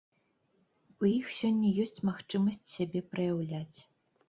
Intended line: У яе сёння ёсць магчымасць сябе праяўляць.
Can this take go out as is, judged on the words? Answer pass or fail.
fail